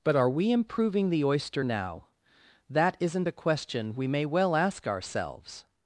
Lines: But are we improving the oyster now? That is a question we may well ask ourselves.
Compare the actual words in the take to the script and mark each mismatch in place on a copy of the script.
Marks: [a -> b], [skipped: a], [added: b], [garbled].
But are we improving the oyster now? That [is -> isn't] a question we may well ask ourselves.